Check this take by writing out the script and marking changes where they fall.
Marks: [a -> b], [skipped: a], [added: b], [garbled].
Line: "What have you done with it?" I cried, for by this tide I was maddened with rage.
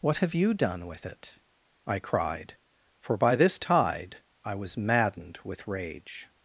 "What have you done with it?" I cried, for by this tide I was maddened with rage.